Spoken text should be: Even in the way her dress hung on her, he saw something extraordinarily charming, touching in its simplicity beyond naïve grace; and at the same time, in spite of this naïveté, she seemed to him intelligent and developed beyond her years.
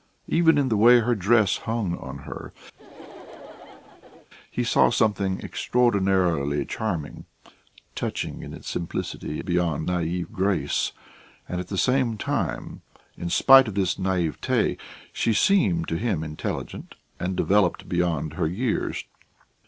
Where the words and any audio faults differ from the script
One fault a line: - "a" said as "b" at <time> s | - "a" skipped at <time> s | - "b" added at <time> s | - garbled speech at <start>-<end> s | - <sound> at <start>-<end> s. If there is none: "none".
- laugh at 2.7-4.3 s